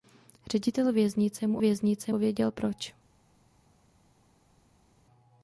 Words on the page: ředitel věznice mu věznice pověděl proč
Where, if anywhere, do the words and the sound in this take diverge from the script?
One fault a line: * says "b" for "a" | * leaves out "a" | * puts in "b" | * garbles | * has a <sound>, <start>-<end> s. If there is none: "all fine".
all fine